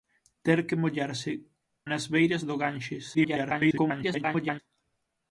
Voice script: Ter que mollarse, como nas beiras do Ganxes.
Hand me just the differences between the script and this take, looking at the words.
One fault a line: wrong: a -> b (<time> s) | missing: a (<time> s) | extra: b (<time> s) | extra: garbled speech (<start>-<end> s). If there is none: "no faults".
missing: como (1.3 s)
extra: garbled speech (3.1-4.6 s)